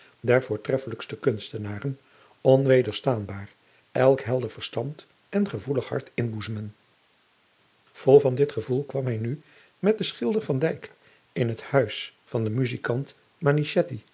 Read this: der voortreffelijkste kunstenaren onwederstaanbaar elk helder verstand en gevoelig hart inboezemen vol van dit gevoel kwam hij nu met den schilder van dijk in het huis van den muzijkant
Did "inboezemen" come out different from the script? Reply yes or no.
no